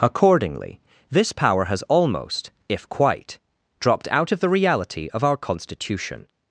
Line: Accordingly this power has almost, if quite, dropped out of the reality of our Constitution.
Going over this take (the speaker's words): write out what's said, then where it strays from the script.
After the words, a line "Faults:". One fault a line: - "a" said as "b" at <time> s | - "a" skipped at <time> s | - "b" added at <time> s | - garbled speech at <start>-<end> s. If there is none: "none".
Accordingly this power has almost, if quite, dropped out of the reality of our Constitution.
Faults:
none